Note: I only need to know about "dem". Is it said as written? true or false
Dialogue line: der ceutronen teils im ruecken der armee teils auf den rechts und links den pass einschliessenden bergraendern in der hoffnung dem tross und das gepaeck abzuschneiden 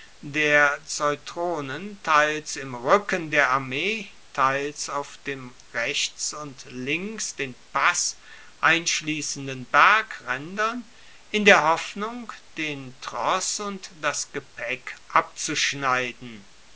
false